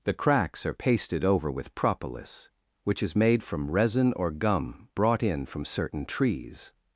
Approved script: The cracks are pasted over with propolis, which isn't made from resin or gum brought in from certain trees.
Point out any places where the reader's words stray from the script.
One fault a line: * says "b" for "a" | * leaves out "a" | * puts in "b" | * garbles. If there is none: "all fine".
* says "is" for "isn't"